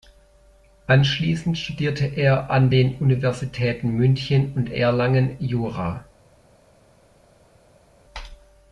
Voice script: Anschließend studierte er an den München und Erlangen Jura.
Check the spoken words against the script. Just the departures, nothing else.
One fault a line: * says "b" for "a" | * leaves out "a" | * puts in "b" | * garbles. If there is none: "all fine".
* puts in "Universitäten"